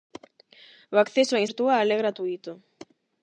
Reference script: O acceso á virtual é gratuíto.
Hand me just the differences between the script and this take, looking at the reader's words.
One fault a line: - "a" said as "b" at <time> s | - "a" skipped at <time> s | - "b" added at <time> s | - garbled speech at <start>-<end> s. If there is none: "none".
none